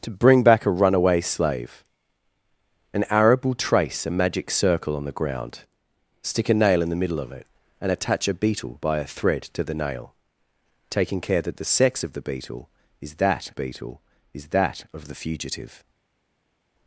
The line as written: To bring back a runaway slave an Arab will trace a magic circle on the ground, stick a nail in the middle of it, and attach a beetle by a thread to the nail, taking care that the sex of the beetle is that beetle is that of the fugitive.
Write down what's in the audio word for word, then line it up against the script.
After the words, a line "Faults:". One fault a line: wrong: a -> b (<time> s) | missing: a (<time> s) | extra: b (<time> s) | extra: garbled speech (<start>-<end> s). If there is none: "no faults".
To bring back a runaway slave an Arab will trace a magic circle on the ground, stick a nail in the middle of it, and attach a beetle by a thread to the nail, taking care that the sex of the beetle is that beetle is that of the fugitive.
Faults:
no faults